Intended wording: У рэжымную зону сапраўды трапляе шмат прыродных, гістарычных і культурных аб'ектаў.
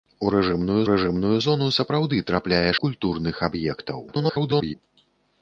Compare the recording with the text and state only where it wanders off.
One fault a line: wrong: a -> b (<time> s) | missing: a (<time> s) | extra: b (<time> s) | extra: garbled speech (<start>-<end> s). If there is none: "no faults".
extra: рэжымную (0.9 s)
missing: шмат прыродных гістарычных (2.7 s)
extra: garbled speech (4.1-4.7 s)